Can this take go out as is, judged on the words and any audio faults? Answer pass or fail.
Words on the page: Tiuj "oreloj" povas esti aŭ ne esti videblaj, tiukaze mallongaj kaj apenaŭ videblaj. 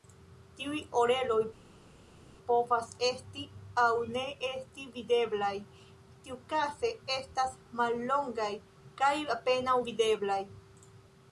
fail